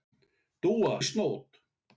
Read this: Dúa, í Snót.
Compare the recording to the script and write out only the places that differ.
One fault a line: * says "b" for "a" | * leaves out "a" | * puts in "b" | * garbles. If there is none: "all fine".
all fine